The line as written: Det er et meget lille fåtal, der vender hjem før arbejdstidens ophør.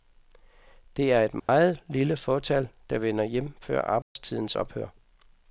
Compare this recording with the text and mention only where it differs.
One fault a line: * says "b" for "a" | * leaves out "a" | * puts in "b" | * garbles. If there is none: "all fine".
all fine